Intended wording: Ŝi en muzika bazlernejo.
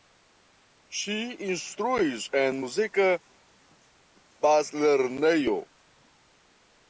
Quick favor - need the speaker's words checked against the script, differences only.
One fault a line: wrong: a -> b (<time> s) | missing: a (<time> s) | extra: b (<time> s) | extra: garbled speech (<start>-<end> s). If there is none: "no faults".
extra: instruis (1.5 s)